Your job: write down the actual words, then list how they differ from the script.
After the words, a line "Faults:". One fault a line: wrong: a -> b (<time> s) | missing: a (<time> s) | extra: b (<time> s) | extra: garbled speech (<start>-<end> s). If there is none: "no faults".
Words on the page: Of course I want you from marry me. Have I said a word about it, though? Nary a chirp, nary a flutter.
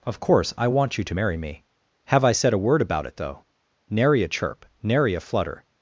Of course I want you to marry me. Have I said a word about it, though? Nary a chirp, nary a flutter.
Faults:
wrong: from -> to (1.0 s)